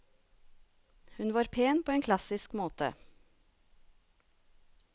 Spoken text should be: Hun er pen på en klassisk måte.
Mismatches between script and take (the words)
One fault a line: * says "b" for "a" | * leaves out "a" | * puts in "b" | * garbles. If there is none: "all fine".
* says "var" for "er"